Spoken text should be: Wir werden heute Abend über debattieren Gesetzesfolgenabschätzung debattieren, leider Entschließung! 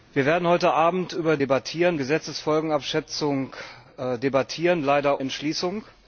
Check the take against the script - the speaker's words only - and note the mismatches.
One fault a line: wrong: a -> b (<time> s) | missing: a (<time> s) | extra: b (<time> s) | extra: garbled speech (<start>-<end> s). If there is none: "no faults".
no faults